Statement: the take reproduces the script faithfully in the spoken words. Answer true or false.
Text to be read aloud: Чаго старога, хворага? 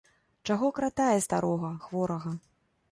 false